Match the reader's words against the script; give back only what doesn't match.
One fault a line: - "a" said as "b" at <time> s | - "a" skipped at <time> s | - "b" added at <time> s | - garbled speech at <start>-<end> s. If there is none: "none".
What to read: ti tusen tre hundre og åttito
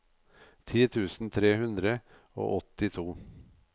none